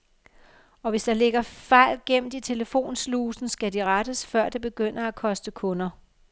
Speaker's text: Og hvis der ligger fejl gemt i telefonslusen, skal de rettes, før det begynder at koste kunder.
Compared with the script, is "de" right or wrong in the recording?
right